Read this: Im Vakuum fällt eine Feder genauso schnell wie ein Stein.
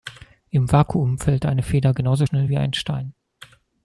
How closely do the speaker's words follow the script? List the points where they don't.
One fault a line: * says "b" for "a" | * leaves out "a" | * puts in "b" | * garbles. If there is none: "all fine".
all fine